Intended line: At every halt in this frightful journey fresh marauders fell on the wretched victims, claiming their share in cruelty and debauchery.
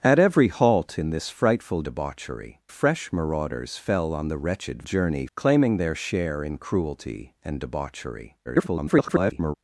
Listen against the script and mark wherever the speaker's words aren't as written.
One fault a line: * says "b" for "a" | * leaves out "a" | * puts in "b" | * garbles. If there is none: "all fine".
* says "debauchery" for "journey"
* says "journey" for "victims"
* garbles